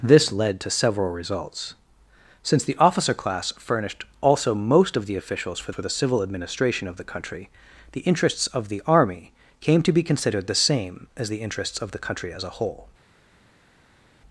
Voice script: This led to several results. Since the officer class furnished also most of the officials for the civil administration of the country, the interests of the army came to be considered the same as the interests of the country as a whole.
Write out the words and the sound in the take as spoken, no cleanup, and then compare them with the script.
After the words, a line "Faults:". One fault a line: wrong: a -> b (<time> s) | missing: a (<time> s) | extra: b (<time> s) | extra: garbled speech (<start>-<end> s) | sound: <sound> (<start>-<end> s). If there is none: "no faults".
This led to several results. Since the officer class furnished also most of the officials for for the civil administration of the country, the interests of the army came to be considered the same as the interests of the country as a whole.
Faults:
extra: for (5.7 s)